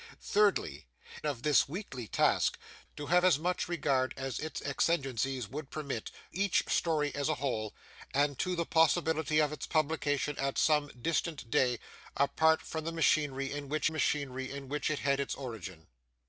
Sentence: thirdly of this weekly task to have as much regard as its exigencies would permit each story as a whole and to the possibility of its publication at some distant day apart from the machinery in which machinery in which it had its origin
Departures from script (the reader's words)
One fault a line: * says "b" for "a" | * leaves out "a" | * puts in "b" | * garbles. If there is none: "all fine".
all fine